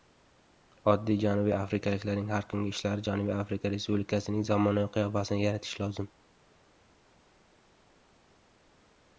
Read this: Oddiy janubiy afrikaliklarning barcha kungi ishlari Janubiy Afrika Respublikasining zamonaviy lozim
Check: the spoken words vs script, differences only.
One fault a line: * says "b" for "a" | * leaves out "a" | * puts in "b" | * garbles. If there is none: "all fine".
* says "har" for "barcha"
* puts in "qiyofasini yaratishi"